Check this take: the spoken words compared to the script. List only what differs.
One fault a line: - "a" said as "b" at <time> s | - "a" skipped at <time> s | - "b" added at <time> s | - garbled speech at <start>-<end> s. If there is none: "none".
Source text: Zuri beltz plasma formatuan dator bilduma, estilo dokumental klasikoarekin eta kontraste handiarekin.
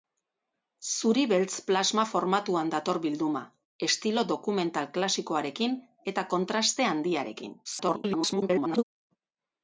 - garbled speech at 7.6-8.8 s